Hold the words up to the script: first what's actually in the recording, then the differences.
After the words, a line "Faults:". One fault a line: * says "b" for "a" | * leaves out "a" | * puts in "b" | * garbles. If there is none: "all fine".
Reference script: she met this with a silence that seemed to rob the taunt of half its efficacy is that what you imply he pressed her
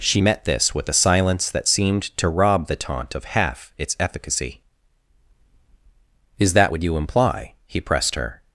she met this with a silence that seemed to rob the taunt of half its efficacy is that what you imply he pressed her
Faults:
all fine